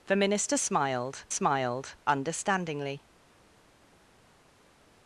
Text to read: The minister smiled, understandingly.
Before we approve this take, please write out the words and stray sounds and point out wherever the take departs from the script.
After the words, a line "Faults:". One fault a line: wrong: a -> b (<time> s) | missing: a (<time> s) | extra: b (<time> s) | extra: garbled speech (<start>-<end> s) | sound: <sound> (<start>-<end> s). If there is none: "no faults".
The minister smiled smiled, understandingly.
Faults:
extra: smiled (1.3 s)